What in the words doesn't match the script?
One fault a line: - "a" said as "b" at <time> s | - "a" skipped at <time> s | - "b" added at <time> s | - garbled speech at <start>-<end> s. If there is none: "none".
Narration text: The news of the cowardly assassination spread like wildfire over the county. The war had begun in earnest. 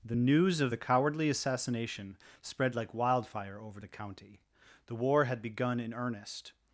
none